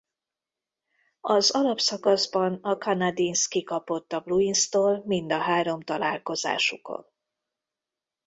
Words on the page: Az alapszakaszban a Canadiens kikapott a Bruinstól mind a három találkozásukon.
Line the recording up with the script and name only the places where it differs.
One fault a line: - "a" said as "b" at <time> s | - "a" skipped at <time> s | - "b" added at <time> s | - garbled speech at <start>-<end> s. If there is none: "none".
none